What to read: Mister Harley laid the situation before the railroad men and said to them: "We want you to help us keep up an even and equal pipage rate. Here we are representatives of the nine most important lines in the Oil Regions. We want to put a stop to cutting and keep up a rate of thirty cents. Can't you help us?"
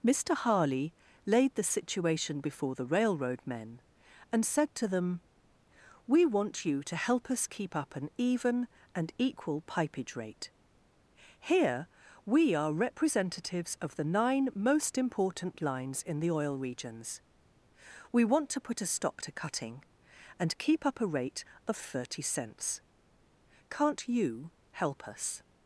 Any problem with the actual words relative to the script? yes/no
no